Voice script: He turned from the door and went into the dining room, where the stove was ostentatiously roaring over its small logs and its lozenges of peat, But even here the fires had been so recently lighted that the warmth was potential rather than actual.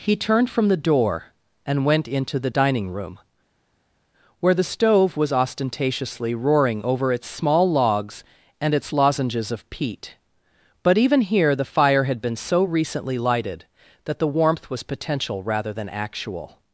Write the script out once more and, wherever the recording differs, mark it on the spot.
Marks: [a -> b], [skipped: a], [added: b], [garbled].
He turned from the door and went into the dining room, where the stove was ostentatiously roaring over its small logs and its lozenges of peat, But even here the [fires -> fire] had been so recently lighted that the warmth was potential rather than actual.